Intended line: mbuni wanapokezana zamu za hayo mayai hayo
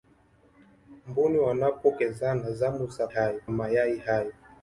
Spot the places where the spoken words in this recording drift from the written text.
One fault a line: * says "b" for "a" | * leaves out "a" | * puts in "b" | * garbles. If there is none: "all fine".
all fine